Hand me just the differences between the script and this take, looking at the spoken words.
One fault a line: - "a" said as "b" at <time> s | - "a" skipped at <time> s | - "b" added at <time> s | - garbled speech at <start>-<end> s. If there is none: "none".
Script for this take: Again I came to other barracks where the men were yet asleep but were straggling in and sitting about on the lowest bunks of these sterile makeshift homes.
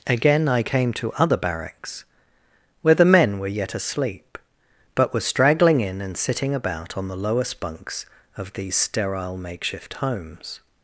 none